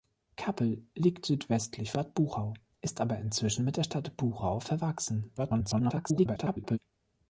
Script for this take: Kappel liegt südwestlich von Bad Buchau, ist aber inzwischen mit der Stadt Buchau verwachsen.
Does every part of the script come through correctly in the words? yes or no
no